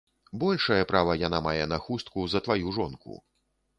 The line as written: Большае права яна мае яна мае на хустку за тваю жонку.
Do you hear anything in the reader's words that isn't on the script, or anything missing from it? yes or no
yes